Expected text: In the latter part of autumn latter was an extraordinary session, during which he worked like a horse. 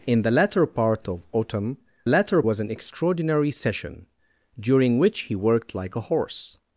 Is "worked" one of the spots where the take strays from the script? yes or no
no